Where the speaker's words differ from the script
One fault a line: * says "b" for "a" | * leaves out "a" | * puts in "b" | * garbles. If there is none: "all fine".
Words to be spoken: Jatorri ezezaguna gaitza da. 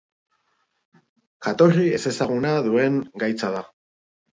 * puts in "duen"